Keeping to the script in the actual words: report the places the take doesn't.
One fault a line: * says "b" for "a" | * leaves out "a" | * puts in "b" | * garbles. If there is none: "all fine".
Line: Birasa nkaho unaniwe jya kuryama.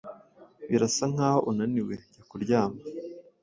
all fine